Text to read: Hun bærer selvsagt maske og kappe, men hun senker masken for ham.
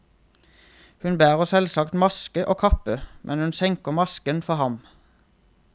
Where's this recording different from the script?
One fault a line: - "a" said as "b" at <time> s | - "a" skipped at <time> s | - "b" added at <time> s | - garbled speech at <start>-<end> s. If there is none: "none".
none